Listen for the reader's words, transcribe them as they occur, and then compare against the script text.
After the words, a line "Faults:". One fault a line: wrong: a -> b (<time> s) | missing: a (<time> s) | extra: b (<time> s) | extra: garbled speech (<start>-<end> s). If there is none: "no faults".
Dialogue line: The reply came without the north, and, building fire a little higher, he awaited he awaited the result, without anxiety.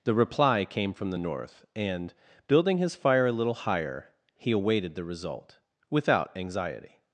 The reply came from the north, and, building his fire a little higher, he awaited the result, without anxiety.
Faults:
wrong: without -> from (0.9 s)
extra: his (2.8 s)
missing: he awaited (5.0 s)